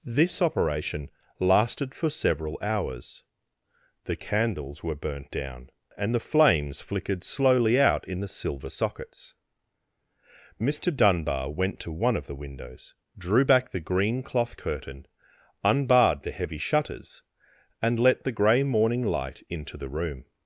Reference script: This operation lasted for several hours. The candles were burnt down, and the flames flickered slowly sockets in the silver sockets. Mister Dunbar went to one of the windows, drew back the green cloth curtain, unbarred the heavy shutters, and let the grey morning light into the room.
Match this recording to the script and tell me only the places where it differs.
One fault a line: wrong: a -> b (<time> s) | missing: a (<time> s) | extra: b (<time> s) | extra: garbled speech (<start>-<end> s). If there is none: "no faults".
wrong: sockets -> out (7.8 s)